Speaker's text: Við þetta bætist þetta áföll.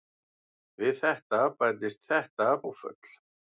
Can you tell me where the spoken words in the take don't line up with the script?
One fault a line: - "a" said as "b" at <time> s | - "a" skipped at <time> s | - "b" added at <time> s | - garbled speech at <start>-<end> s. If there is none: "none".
none